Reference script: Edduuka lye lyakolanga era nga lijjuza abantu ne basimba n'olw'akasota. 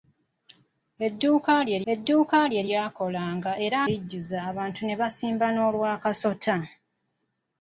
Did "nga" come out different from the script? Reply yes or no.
yes